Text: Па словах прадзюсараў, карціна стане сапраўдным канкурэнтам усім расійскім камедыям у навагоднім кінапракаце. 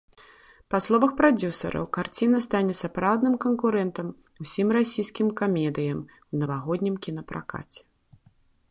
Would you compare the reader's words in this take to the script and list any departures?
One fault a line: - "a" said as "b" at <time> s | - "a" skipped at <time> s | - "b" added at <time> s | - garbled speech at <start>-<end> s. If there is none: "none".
none